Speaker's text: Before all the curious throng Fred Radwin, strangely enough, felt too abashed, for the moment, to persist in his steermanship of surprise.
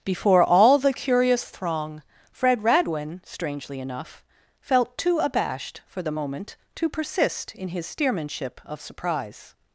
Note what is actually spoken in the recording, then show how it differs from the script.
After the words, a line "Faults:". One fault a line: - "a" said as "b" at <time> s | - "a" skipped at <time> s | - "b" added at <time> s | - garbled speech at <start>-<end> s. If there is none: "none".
Before all the curious throng Fred Radwin, strangely enough, felt too abashed, for the moment, to persist in his steermanship of surprise.
Faults:
none